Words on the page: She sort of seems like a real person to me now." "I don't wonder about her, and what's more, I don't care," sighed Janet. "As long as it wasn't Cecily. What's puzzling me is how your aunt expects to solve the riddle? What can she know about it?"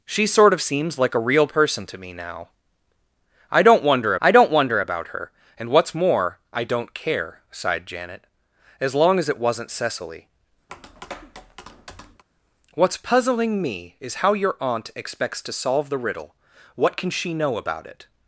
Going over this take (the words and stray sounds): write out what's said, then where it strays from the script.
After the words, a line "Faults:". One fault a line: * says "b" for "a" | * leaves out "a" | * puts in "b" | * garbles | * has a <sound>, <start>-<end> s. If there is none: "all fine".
She sort of seems like a real person to me now." "I don't wonder I don't wonder about her, and what's more, I don't care," sighed Janet. "As long as it wasn't Cecily. What's puzzling me is how your aunt expects to solve the riddle? What can she know about it?"
Faults:
* puts in "I don't wonder"
* has a tap, 10.7-12.2 s